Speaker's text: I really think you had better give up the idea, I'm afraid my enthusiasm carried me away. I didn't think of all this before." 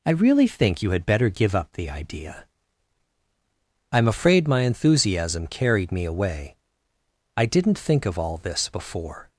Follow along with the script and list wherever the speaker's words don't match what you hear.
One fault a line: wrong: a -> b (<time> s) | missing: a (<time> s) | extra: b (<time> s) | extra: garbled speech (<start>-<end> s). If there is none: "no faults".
no faults